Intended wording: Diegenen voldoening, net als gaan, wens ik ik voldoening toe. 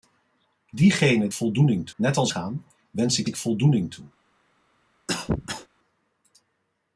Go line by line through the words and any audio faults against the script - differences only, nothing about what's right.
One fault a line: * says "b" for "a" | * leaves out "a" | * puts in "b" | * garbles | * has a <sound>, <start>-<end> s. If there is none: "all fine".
* has a cough, 5.1-5.7 s